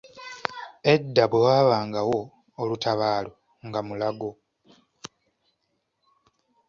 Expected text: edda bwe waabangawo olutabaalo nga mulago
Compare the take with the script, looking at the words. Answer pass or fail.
pass